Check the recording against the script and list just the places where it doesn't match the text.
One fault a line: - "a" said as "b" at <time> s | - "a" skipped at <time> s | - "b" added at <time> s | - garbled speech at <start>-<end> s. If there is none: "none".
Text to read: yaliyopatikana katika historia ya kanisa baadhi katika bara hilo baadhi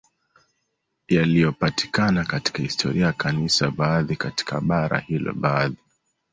none